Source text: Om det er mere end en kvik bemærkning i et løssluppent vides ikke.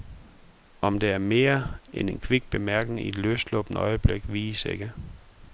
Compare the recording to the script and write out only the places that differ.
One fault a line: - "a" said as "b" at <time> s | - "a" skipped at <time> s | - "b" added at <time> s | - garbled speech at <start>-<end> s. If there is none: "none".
- "øjeblik" added at 3.8 s